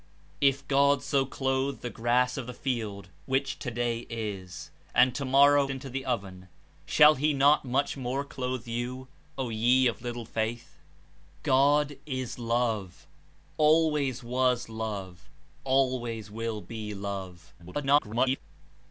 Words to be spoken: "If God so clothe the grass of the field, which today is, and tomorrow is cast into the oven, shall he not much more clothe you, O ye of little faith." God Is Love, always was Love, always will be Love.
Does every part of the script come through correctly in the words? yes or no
no